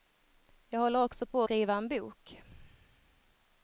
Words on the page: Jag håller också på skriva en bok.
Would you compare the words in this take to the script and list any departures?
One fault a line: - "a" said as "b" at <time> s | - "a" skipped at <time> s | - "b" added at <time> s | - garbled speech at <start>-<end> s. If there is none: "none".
none